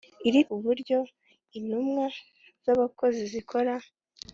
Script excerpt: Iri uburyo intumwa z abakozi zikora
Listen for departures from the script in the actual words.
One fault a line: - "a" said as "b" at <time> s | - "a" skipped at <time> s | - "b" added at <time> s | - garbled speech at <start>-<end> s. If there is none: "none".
none